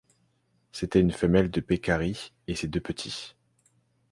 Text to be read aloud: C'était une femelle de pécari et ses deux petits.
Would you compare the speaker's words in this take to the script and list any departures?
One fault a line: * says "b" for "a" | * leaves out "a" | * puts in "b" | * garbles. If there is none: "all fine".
all fine